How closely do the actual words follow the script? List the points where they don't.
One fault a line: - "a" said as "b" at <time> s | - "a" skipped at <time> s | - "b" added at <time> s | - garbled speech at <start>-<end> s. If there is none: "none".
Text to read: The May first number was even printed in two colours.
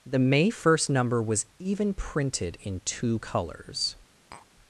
none